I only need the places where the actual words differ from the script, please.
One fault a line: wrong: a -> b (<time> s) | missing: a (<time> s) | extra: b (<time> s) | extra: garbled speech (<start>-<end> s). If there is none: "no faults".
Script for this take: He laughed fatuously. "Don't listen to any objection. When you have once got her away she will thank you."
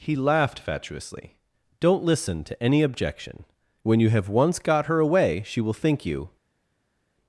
wrong: thank -> think (5.7 s)